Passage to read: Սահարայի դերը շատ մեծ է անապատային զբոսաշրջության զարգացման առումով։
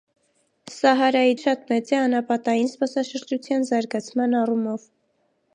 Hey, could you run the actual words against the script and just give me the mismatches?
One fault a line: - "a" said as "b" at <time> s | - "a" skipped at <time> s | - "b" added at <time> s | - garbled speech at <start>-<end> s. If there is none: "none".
- "դերը" skipped at 1.4 s